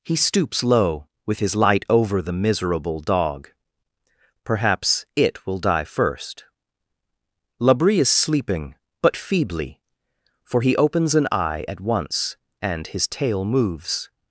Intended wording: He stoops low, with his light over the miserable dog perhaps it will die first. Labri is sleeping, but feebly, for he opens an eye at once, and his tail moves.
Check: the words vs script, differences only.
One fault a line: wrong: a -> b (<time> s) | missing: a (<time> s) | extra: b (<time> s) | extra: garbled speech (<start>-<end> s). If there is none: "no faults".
no faults